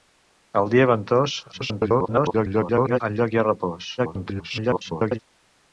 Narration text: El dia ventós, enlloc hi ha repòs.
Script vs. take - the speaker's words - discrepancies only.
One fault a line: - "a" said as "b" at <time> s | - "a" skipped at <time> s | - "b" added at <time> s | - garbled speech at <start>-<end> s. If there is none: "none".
- garbled speech at 1.5-3.0 s
- garbled speech at 4.0-5.2 s